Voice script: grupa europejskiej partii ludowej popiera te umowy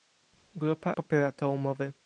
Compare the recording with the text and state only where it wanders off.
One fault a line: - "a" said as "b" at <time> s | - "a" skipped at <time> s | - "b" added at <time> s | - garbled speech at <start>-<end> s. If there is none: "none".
- "europejskiej partii ludowej" skipped at 0.9 s